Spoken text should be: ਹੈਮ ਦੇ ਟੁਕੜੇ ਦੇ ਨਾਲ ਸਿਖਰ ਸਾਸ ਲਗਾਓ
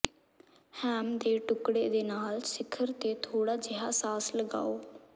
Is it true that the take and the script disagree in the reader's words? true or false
true